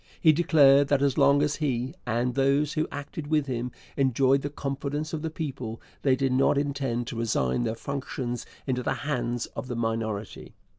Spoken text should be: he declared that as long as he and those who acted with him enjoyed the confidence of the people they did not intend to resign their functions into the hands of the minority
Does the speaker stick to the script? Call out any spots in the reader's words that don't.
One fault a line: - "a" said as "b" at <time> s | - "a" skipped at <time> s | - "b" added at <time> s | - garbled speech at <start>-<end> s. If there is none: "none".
none